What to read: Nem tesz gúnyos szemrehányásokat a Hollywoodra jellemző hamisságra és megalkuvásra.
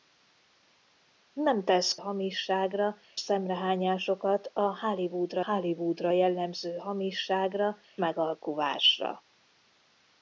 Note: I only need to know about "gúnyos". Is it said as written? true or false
false